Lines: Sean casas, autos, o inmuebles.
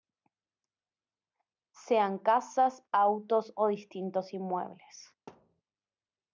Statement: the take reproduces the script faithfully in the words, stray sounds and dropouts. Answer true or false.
false